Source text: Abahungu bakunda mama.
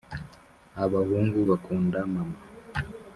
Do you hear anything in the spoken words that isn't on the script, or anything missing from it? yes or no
no